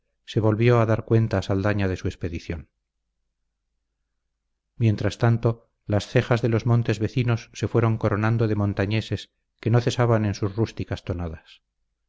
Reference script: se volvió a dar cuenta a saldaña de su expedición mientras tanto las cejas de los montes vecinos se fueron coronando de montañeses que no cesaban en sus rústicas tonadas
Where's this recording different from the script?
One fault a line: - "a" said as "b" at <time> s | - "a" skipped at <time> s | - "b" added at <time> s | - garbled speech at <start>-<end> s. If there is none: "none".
none